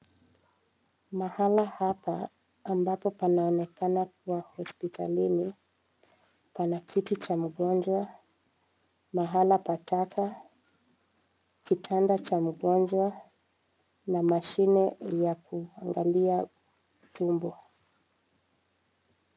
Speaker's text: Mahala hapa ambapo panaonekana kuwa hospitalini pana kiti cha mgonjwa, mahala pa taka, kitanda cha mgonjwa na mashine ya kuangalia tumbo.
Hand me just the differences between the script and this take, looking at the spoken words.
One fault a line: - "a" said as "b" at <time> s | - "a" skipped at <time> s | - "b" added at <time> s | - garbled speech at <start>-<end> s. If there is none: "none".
none